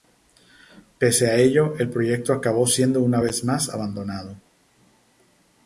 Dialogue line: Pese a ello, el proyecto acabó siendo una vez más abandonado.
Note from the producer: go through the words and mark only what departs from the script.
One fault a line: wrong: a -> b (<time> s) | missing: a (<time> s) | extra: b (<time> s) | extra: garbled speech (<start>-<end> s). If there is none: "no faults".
no faults